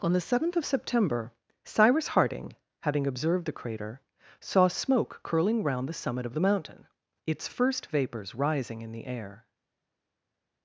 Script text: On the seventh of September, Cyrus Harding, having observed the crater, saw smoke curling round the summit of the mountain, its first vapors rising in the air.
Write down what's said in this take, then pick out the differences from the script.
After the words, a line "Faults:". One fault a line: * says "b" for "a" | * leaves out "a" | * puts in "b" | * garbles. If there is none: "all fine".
On the seventh of September, Cyrus Harding, having observed the crater, saw smoke curling round the summit of the mountain, its first vapors rising in the air.
Faults:
all fine